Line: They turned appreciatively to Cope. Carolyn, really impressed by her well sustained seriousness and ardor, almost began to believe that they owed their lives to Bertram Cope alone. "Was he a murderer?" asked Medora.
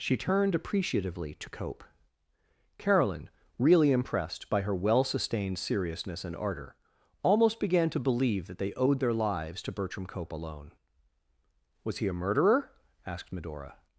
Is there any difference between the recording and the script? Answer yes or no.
yes